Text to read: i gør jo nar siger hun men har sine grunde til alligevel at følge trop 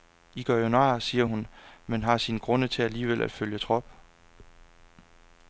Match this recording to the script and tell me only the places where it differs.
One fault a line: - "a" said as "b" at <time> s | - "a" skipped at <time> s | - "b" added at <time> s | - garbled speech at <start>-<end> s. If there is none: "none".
none